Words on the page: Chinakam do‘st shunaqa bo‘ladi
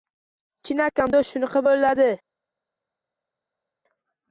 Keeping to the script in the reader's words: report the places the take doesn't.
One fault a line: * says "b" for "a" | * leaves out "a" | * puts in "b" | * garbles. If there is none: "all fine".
all fine